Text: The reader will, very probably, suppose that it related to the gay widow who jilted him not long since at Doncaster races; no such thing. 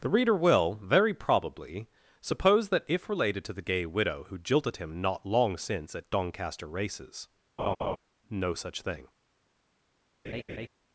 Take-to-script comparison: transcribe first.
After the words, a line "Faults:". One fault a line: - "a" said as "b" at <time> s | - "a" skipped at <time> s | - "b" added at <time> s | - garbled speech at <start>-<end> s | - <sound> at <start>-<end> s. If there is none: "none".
The reader will, very probably, suppose that if related to the gay widow who jilted him not long since at Doncaster races; no such thing.
Faults:
- "it" said as "if" at 2.9 s
- laugh at 7.6-8.0 s
- laugh at 10.2-10.7 s